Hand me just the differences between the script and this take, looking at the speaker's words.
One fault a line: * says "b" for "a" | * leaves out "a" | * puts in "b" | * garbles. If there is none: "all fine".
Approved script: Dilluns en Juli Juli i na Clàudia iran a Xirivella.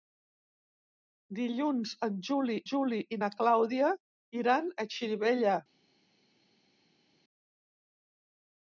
all fine